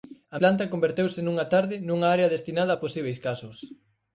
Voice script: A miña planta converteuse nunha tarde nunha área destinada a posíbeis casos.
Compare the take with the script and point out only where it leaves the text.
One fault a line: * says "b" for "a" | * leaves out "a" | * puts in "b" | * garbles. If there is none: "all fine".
* leaves out "miña"